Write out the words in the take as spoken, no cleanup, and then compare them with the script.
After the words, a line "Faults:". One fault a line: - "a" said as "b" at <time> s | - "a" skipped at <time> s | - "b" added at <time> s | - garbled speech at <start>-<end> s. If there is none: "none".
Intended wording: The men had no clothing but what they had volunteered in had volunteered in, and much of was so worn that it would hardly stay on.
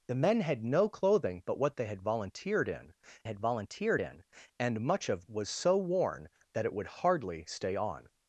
The men had no clothing but what they had volunteered in had volunteered in, and much of was so worn that it would hardly stay on.
Faults:
none